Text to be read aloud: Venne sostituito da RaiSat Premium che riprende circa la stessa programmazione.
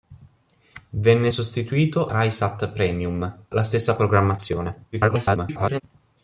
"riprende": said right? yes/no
no